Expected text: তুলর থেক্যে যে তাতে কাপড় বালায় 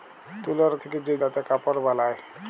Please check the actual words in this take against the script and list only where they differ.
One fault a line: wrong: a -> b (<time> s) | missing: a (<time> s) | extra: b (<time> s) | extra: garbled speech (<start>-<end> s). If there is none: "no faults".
no faults